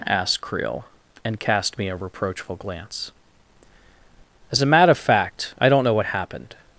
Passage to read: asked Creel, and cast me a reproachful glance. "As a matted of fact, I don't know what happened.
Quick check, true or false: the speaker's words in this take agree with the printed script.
false